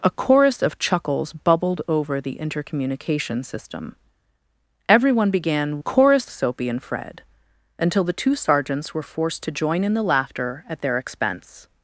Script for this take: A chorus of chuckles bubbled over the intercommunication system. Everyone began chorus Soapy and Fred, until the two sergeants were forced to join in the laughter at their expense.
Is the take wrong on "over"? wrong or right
right